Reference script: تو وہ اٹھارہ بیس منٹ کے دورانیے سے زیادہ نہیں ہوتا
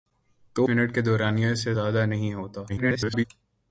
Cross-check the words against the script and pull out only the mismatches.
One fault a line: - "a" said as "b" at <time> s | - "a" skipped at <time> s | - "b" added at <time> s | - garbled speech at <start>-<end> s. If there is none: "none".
- "وہ اٹھارہ بیس" skipped at 0.6 s
- garbled speech at 2.7-3.2 s